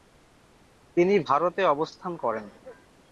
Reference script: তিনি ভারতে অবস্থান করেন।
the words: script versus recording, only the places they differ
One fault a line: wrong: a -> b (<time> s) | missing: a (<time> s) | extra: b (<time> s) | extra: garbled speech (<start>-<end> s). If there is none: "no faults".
no faults